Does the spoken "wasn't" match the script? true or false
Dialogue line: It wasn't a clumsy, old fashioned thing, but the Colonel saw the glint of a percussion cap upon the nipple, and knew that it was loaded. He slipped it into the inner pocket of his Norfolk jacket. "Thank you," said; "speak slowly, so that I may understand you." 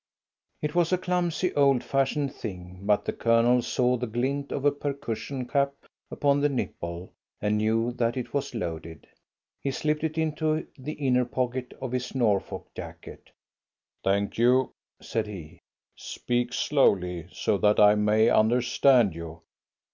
false